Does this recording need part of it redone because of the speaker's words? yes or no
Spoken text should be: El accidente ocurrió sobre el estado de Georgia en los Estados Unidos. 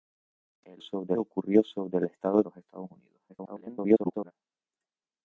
yes